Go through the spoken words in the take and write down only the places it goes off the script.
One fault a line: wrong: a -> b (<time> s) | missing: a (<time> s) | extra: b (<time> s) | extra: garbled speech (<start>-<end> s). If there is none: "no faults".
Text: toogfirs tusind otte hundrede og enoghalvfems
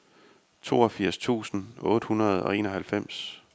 no faults